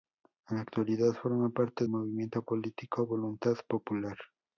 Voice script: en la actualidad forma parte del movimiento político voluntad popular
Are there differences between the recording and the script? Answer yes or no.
yes